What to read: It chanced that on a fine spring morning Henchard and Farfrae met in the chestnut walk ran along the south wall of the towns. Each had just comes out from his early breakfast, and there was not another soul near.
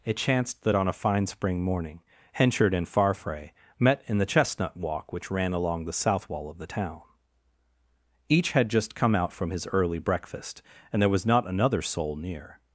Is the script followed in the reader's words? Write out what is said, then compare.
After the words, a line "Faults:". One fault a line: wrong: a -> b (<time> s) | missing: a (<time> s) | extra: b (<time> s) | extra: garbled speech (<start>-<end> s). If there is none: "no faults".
It chanced that on a fine spring morning Henchard and Farfrae met in the chestnut walk which ran along the south wall of the town. Each had just come out from his early breakfast, and there was not another soul near.
Faults:
extra: which (5.1 s)
wrong: towns -> town (6.7 s)
wrong: comes -> come (9.0 s)